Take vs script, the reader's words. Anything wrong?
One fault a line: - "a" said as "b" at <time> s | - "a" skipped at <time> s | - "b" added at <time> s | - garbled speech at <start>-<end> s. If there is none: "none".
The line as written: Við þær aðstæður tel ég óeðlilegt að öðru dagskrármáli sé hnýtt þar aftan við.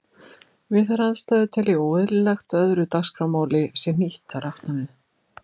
none